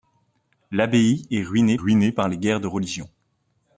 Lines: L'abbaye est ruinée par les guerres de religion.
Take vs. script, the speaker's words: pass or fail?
fail